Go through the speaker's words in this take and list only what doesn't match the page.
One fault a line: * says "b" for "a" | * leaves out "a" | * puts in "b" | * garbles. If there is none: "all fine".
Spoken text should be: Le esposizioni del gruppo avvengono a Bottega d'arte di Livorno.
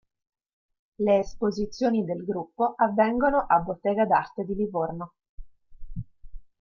all fine